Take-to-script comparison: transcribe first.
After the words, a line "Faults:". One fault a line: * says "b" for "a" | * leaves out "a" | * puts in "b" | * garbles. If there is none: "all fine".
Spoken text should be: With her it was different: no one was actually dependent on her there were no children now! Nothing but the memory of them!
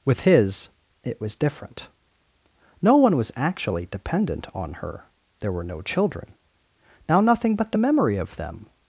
With his it was different: no one was actually dependent on her there were no children now! Nothing but the memory of them!
Faults:
* says "his" for "her"